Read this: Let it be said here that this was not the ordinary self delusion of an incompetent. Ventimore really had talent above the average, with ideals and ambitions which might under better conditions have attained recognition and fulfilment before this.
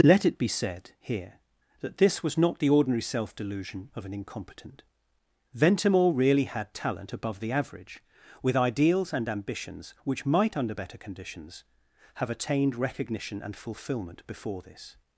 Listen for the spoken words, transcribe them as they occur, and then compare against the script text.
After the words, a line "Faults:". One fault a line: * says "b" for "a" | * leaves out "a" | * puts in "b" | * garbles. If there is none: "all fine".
Let it be said here that this was not the ordinary self delusion of an incompetent. Ventimore really had talent above the average, with ideals and ambitions which might under better conditions have attained recognition and fulfilment before this.
Faults:
all fine